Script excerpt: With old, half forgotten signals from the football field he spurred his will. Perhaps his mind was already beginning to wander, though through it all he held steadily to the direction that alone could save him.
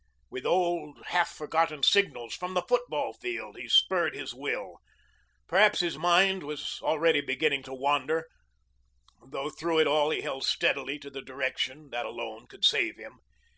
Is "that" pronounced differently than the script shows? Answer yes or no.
no